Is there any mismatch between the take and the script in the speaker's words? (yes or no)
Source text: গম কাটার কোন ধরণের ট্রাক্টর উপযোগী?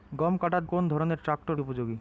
no